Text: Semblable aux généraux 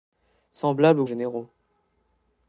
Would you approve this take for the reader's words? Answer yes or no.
yes